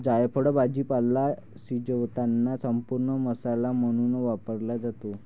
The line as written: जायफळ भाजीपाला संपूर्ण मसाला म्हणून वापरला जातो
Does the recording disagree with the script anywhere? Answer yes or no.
yes